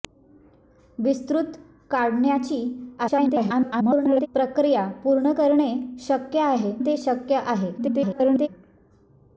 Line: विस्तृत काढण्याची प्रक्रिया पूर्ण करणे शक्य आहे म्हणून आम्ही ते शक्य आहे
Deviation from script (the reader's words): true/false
true